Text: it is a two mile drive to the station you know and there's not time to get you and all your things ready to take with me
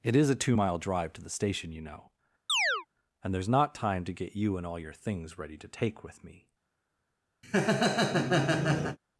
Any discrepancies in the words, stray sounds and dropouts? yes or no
yes